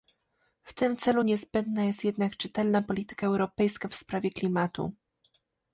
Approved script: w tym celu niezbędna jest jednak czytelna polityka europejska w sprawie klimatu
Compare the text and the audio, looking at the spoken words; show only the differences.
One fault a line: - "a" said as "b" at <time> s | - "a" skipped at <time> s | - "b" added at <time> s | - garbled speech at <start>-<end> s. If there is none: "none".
none